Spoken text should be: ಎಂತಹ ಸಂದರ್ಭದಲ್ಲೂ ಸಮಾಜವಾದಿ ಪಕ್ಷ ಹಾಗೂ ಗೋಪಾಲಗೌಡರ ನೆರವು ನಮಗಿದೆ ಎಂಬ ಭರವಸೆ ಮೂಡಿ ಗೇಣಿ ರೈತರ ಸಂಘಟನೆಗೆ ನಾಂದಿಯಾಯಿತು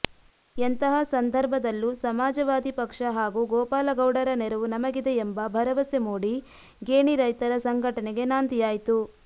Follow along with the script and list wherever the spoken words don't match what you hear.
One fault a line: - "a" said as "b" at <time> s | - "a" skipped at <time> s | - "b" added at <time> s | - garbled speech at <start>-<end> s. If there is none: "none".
none